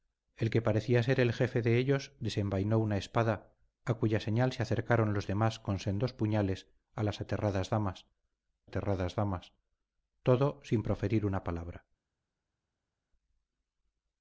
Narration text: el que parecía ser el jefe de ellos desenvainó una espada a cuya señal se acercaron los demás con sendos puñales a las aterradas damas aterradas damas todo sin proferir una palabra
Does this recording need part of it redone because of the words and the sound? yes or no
no